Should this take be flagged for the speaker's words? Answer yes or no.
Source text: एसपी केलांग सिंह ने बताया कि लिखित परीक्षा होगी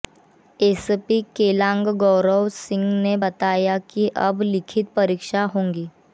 yes